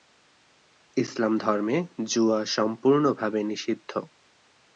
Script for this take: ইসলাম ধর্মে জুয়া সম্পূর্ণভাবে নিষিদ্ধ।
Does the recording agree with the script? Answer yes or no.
yes